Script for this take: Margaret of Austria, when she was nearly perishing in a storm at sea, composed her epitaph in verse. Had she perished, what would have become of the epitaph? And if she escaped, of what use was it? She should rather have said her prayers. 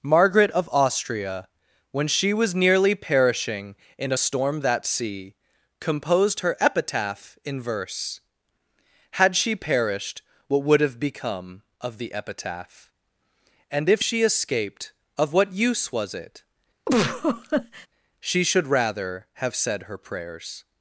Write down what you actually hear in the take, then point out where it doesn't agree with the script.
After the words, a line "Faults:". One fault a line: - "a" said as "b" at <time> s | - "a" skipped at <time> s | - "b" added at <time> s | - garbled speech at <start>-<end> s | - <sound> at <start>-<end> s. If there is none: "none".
Margaret of Austria, when she was nearly perishing in a storm that sea, composed her epitaph in verse. Had she perished, what would have become of the epitaph? And if she escaped, of what use was it? She should rather have said her prayers.
Faults:
- "at" said as "that" at 4.6 s
- laugh at 16.9-17.9 s